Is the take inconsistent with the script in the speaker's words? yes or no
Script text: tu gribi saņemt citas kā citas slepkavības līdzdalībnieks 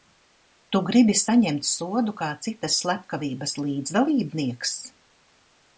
yes